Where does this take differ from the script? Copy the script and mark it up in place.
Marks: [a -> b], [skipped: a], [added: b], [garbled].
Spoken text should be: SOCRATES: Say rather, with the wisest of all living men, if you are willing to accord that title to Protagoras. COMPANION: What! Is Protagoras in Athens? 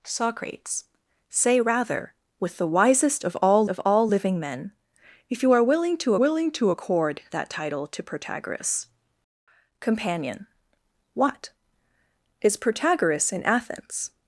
SOCRATES: Say rather, with the wisest of all [added: of all] living men, if you are willing to [added: willing to] accord that title to Protagoras. COMPANION: What! Is Protagoras in Athens?